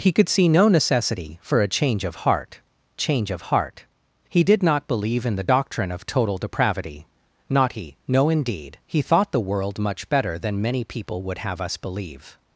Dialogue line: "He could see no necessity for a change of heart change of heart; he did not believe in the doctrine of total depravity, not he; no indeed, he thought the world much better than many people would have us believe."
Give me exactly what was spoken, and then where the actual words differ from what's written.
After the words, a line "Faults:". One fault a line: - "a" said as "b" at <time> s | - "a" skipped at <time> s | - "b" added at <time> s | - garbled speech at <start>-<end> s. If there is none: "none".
"He could see no necessity for a change of heart change of heart; he did not believe in the doctrine of total depravity, not he; no indeed, he thought the world much better than many people would have us believe."
Faults:
none